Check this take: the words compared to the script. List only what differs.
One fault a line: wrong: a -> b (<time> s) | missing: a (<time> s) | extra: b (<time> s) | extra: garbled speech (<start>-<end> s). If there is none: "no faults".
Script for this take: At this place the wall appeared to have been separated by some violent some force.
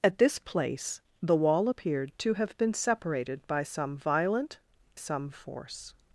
no faults